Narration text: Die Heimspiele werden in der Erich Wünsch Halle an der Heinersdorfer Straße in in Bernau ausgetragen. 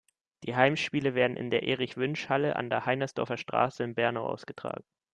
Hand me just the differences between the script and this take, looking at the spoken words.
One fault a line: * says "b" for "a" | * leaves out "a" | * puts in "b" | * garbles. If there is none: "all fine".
* leaves out "in"